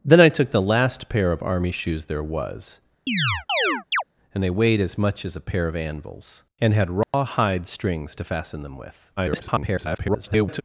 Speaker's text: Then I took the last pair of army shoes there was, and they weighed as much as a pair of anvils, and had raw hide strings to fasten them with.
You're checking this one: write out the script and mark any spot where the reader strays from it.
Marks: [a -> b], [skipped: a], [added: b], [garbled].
Then I took the last pair of army shoes there was, and they weighed as much as a pair of anvils, and had raw hide strings to fasten them with. [garbled]